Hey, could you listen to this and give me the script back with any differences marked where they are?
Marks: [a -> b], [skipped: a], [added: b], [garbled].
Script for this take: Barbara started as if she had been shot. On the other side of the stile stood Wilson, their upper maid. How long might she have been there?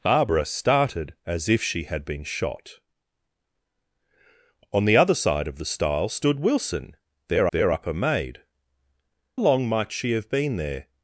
Barbara started as if she had been shot. On the other side of the stile stood Wilson, their [added: their] upper maid. [skipped: How] long might she have been there?